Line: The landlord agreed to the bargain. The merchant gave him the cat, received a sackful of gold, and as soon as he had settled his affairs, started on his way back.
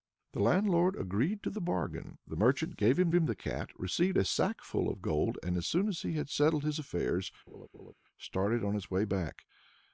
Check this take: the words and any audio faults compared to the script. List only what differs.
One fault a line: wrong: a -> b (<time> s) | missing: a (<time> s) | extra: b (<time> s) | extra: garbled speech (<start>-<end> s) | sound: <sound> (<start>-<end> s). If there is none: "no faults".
extra: him (3.1 s)
sound: laugh (7.5-7.9 s)